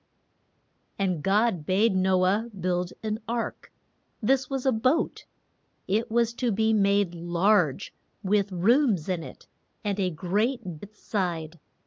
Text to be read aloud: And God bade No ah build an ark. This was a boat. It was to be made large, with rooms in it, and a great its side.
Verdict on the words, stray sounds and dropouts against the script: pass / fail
pass